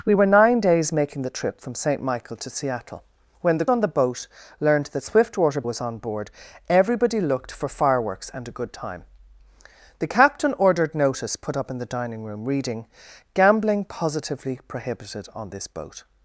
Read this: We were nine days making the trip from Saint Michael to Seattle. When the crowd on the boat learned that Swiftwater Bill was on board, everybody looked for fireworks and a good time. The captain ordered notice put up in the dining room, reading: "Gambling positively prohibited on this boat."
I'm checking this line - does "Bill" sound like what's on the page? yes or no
no